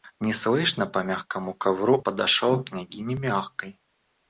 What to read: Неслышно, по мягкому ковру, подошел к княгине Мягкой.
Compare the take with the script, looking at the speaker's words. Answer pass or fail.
pass